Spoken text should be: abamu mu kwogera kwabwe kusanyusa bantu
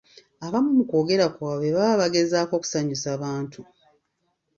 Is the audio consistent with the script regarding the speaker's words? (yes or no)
no